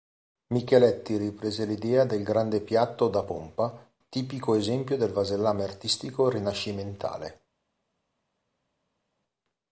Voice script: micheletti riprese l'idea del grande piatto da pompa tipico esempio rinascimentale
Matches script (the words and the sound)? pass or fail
fail